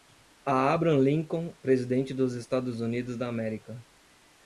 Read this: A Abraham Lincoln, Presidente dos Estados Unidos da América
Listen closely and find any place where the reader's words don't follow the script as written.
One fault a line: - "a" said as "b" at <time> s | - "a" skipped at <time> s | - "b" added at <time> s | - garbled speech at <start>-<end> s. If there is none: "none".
none